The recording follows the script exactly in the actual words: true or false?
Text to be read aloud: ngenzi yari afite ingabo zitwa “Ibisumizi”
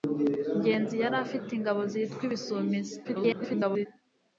false